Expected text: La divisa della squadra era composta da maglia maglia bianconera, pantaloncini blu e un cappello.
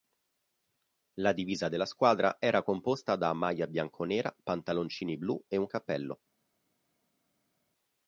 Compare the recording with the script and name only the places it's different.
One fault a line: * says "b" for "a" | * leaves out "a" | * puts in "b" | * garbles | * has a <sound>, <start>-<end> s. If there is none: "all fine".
* leaves out "maglia"